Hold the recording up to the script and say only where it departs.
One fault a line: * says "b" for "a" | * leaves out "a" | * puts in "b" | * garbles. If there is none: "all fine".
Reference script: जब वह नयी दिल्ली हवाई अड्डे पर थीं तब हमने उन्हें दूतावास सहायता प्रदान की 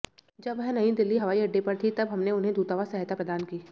all fine